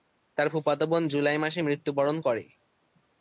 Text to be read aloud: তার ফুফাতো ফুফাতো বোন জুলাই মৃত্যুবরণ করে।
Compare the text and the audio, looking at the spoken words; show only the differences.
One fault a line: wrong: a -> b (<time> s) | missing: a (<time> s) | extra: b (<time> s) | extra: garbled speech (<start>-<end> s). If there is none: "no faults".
missing: ফুফাতো (0.9 s)
extra: মাসে (1.4 s)